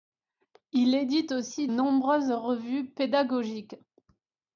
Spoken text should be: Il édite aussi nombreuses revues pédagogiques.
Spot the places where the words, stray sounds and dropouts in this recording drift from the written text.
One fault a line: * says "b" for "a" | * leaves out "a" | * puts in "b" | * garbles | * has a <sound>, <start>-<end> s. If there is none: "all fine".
all fine